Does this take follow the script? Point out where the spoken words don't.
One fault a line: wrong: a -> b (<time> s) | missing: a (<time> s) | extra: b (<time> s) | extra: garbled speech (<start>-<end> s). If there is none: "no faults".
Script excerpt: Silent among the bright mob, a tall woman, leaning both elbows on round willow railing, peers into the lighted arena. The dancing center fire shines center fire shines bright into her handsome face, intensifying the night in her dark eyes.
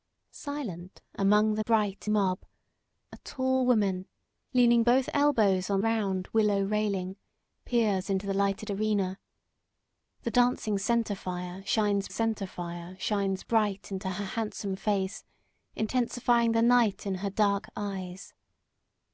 no faults